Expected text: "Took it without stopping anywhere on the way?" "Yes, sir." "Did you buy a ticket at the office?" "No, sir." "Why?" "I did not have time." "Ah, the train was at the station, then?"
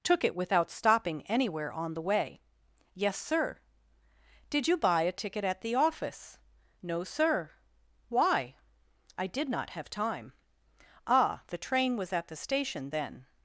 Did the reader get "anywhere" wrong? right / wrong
right